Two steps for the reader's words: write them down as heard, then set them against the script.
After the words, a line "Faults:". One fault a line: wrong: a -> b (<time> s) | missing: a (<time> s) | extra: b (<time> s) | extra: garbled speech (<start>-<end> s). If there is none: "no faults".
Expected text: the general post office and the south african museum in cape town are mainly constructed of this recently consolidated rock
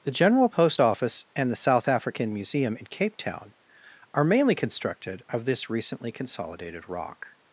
the general post office and the south african museum in cape town are mainly constructed of this recently consolidated rock
Faults:
no faults